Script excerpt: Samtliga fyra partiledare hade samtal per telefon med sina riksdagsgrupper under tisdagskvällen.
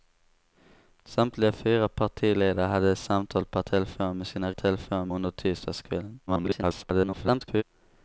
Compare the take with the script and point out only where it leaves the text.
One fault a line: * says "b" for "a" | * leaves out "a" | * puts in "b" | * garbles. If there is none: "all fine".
* says "telefon" for "riksdagsgrupper"
* garbles